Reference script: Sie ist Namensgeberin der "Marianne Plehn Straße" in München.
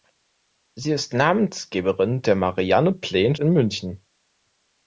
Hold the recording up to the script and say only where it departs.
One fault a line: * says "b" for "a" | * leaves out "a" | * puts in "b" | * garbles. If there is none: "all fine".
* leaves out "Straße"